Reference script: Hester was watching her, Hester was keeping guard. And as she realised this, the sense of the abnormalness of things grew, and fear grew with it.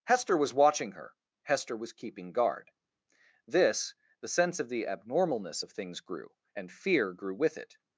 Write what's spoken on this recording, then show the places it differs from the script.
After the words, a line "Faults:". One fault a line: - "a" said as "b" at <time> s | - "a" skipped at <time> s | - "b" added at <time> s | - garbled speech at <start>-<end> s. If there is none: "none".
Hester was watching her, Hester was keeping guard. this, the sense of the abnormalness of things grew, and fear grew with it.
Faults:
- "And as she realised" skipped at 2.7 s